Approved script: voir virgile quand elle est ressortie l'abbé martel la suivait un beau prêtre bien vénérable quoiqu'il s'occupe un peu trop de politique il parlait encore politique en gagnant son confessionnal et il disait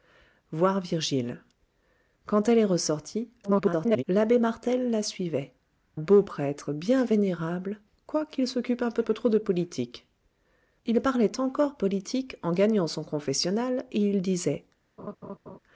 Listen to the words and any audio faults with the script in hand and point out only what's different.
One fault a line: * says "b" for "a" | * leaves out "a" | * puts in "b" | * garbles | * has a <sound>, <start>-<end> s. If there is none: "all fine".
* garbles
* leaves out "un"
* puts in "peu"
* has a laugh, 15.0-15.6 s